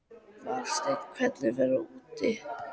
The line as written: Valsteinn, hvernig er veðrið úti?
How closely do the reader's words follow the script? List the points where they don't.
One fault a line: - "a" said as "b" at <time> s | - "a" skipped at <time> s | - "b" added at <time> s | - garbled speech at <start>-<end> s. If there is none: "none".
none